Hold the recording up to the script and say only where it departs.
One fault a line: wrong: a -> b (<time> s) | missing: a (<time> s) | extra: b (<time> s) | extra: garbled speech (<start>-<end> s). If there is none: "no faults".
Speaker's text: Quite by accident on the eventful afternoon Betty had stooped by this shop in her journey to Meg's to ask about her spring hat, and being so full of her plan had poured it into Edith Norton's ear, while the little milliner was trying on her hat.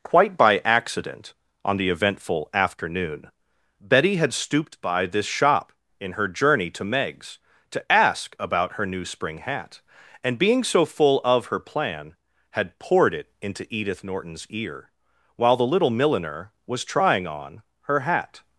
extra: new (8.9 s)